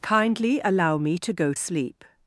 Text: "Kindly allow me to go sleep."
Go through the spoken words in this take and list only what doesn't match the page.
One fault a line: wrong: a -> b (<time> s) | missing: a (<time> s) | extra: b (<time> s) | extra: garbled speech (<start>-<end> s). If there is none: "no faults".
no faults